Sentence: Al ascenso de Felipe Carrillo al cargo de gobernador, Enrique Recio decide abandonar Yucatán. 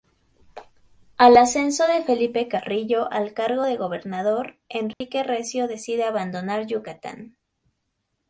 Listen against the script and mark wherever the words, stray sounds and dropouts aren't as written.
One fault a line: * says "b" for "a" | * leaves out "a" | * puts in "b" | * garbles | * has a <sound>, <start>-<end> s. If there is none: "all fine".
* has a dropout, 4.9-5.0 s